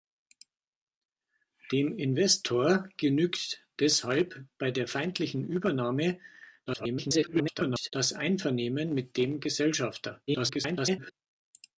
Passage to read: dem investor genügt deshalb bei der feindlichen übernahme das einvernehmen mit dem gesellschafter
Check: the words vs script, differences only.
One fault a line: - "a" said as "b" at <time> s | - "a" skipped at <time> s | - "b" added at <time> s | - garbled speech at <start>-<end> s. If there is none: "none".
- garbled speech at 6.7-7.9 s
- garbled speech at 10.3-11.1 s